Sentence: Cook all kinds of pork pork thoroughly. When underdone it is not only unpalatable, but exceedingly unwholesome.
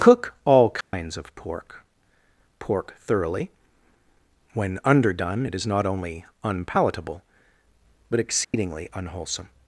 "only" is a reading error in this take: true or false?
false